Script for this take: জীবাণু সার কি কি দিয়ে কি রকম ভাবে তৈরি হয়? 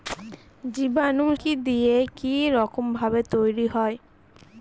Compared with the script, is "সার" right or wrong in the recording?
wrong